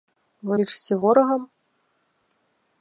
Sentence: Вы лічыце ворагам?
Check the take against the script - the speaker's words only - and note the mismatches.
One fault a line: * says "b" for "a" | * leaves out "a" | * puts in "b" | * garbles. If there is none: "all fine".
all fine